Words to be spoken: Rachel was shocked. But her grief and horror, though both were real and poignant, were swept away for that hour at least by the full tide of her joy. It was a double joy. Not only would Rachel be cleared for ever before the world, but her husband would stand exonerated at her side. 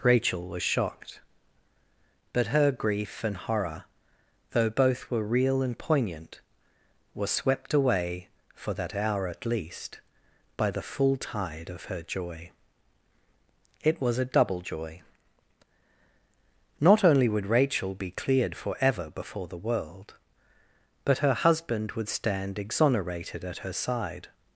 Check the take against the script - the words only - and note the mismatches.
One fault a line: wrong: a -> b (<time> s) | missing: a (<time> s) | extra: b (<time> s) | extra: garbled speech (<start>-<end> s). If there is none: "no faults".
no faults